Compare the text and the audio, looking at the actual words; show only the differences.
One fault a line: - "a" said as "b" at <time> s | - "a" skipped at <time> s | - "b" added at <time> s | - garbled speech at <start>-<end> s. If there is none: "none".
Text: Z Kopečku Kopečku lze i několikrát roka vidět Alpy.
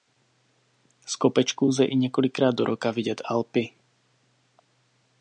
- "Kopečku" skipped at 1.6 s
- "do" added at 2.5 s